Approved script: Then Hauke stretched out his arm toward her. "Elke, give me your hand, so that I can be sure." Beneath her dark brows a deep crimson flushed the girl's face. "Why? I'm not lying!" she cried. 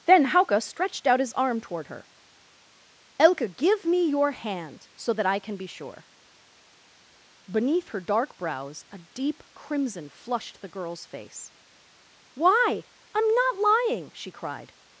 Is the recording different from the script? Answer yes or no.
no